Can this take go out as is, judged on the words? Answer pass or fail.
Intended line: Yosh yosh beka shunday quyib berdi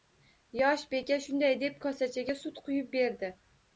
fail